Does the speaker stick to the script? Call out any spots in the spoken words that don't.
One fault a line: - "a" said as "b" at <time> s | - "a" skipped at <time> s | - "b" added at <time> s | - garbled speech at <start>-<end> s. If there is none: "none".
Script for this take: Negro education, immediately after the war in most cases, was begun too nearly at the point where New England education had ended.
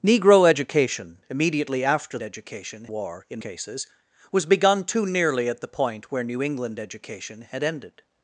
- "the" said as "education" at 2.2 s
- "most" skipped at 3.4 s